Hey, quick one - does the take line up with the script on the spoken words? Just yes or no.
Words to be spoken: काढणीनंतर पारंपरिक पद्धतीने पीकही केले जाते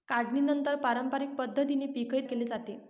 yes